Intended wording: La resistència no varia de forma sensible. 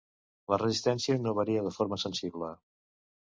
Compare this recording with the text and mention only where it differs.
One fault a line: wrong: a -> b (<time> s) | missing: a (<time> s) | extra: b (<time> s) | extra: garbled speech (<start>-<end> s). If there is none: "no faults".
no faults